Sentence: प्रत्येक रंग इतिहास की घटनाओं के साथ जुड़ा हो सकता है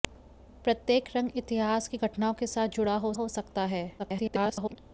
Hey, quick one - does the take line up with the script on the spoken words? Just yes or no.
no